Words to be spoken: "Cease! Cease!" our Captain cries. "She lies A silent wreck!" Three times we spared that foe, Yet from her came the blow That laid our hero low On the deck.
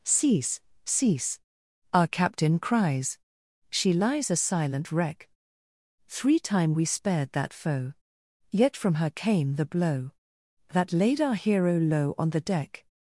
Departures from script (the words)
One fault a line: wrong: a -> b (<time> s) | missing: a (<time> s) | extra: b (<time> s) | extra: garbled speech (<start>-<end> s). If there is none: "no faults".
wrong: times -> time (6.4 s)